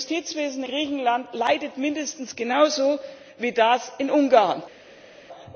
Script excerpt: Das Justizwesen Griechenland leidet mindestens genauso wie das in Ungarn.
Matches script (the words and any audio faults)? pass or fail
pass